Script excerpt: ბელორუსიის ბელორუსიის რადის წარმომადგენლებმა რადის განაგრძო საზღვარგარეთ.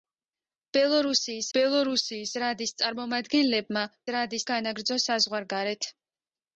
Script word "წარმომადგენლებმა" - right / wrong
right